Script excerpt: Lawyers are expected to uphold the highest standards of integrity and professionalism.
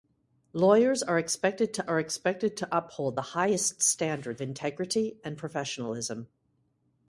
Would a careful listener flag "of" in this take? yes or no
yes